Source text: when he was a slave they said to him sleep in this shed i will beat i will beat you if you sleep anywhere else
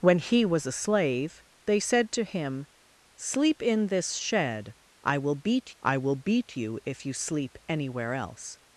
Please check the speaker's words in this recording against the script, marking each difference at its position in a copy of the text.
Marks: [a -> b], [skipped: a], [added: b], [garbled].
when he was a slave they said to him sleep in this shed i will beat i will beat you if you sleep anywhere else